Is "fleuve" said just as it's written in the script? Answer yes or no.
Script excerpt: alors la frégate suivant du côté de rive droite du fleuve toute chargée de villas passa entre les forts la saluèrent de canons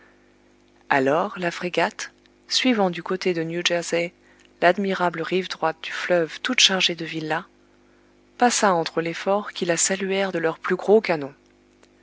yes